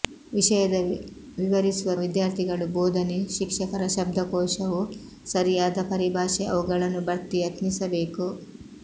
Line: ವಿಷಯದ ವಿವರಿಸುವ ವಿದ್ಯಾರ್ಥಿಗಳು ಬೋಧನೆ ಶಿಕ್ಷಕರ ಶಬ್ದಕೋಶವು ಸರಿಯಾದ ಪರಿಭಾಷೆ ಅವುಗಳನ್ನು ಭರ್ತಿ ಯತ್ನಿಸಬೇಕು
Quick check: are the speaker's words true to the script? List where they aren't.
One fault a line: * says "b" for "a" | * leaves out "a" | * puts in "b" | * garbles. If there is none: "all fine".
all fine